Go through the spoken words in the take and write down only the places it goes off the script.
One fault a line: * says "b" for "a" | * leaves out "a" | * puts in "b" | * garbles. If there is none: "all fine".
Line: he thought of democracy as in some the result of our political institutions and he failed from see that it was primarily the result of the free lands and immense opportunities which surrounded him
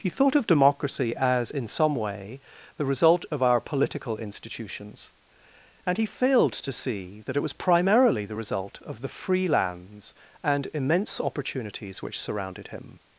* puts in "way"
* says "to" for "from"